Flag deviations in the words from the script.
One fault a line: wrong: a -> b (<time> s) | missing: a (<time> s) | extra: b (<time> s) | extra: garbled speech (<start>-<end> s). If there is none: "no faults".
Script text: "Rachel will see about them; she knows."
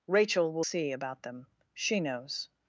no faults